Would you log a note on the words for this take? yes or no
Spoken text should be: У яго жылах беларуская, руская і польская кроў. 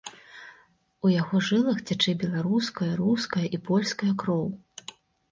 yes